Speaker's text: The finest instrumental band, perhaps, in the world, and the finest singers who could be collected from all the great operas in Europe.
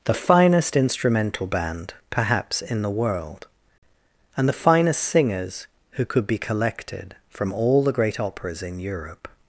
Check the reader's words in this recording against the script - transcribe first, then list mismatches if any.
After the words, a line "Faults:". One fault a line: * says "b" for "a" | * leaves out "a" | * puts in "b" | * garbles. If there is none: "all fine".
The finest instrumental band, perhaps, in the world, and the finest singers who could be collected from all the great operas in Europe.
Faults:
all fine